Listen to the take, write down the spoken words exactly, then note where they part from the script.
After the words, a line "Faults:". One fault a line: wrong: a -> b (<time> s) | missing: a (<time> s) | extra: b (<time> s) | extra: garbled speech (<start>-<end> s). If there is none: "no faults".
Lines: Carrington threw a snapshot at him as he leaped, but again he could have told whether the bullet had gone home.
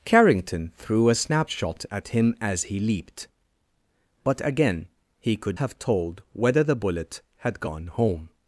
Carrington threw a snapshot at him as he leaped, but again he could have told whether the bullet had gone home.
Faults:
no faults